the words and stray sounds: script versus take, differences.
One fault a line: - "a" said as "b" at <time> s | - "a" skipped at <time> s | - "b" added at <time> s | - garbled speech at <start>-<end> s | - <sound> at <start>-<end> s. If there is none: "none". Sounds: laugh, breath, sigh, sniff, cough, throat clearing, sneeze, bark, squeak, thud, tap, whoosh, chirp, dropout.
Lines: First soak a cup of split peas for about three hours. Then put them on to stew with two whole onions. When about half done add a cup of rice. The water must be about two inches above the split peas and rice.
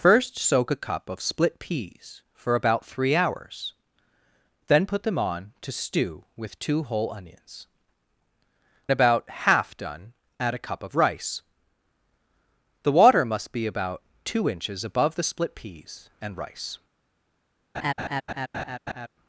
- "When" skipped at 7.7 s
- laugh at 17.7-19.1 s